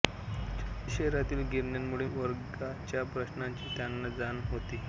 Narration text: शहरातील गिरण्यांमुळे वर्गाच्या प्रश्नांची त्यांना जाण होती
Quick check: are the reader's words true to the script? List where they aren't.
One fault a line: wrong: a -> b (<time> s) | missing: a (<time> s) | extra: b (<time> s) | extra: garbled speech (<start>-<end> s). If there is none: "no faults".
no faults